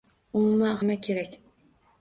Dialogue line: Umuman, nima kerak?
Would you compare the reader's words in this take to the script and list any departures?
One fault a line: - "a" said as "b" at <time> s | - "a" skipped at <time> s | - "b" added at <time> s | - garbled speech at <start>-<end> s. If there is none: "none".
none